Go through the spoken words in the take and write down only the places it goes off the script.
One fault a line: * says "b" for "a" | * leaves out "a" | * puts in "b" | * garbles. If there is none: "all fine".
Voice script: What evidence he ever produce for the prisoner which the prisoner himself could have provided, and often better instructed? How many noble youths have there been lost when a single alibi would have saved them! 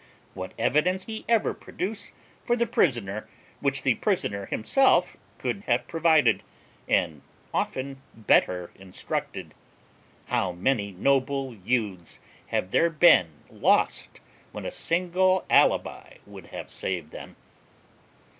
all fine